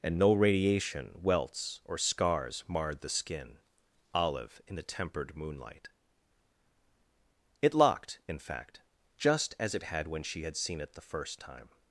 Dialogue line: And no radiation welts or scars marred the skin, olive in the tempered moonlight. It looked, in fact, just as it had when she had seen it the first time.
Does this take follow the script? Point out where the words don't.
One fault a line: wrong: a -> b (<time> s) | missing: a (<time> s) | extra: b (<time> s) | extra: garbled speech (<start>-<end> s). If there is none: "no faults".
wrong: looked -> locked (7.7 s)